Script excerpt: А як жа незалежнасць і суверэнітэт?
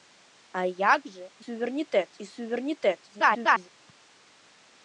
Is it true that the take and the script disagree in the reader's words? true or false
true